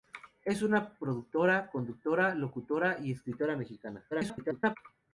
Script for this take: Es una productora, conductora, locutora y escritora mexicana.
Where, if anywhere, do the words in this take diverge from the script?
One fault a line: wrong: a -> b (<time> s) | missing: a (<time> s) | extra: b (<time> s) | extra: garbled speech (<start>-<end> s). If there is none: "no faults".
extra: garbled speech (4.1-4.8 s)